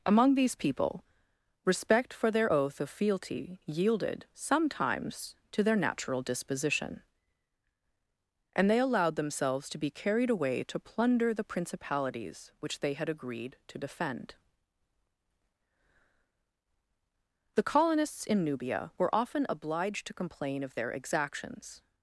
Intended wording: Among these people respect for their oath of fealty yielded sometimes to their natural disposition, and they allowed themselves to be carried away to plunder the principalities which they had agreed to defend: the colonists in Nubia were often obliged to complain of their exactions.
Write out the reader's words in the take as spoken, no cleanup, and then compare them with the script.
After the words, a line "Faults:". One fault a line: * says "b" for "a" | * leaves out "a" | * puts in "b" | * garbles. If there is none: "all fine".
Among these people respect for their oath of fealty yielded sometimes to their natural disposition, and they allowed themselves to be carried away to plunder the principalities which they had agreed to defend: the colonists in Nubia were often obliged to complain of their exactions.
Faults:
all fine